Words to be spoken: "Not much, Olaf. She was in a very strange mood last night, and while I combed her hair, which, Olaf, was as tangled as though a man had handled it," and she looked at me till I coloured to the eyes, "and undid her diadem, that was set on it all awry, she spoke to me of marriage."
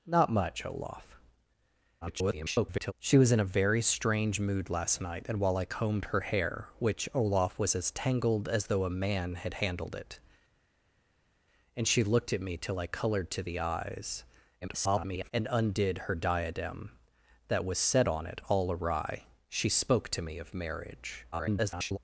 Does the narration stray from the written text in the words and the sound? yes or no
yes